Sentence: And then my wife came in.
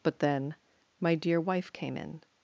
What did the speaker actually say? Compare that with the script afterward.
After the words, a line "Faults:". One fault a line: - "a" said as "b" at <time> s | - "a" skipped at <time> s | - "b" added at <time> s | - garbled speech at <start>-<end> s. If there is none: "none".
But then my dear wife came in.
Faults:
- "And" said as "But" at 0.0 s
- "dear" added at 1.1 s